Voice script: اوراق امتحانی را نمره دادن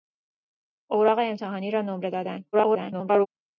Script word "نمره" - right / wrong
right